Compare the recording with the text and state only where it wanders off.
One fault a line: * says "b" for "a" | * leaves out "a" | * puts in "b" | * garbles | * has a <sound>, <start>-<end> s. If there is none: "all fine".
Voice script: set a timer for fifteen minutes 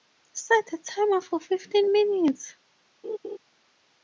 * has a laugh, 3.0-3.4 s